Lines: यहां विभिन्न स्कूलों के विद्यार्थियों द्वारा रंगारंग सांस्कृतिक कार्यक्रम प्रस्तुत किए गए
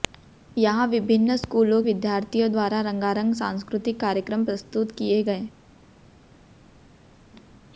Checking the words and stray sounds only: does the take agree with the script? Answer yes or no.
no